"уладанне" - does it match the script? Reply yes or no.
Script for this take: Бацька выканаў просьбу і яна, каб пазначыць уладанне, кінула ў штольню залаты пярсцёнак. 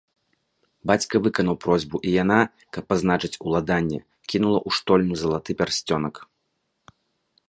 yes